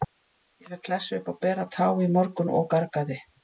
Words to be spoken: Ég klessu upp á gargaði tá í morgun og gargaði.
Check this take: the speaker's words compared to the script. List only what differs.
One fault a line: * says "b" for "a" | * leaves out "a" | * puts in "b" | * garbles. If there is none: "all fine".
* puts in "fékk"
* says "bera" for "gargaði"